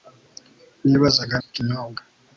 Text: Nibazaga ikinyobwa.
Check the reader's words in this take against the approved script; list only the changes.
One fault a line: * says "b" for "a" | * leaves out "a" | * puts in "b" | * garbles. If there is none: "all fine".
all fine